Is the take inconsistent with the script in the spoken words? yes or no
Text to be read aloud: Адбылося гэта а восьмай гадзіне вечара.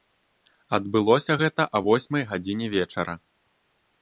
no